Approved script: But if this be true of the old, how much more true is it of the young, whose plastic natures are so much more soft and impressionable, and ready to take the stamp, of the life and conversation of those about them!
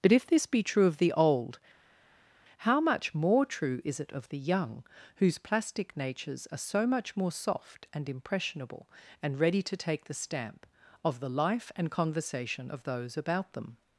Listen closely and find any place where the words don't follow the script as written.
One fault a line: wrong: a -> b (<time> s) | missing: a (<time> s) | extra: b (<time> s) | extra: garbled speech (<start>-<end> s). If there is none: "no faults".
no faults